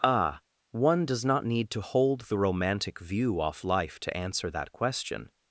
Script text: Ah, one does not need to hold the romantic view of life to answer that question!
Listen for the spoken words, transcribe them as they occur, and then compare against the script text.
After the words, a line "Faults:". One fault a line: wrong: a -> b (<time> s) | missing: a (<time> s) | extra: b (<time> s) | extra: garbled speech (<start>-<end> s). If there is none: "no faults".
Ah, one does not need to hold the romantic view off life to answer that question!
Faults:
wrong: of -> off (3.4 s)